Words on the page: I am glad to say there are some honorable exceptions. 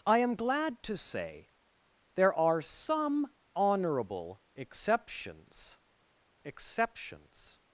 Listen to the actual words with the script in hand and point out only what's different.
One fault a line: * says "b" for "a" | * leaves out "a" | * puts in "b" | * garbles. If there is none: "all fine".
* puts in "exceptions"